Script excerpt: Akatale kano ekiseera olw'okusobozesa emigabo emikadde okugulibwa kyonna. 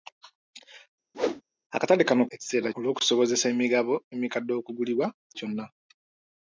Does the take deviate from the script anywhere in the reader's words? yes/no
no